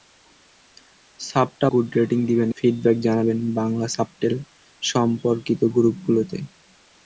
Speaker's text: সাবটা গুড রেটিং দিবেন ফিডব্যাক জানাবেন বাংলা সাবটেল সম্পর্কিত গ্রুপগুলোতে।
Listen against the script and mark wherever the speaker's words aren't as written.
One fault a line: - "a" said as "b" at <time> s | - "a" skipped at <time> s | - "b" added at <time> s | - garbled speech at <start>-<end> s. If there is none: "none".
none